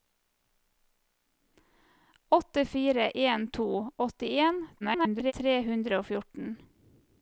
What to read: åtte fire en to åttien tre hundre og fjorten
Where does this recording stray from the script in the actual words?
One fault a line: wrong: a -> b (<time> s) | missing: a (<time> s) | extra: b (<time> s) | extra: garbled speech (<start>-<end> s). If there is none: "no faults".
extra: garbled speech (4.8-5.3 s)